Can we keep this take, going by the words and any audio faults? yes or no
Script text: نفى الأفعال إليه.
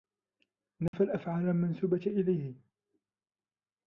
no